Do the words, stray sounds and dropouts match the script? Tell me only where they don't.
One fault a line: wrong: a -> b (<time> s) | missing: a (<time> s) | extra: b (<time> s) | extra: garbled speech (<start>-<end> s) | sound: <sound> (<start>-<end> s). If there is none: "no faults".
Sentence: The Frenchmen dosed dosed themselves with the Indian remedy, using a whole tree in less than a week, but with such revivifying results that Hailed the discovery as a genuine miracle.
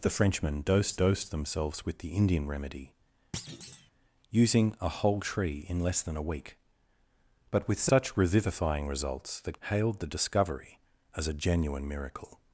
sound: thud (3.3-3.9 s)